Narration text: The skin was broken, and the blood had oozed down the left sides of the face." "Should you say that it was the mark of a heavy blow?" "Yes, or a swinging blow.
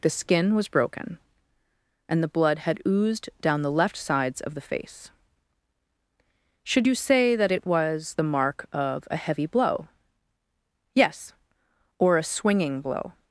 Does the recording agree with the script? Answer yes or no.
yes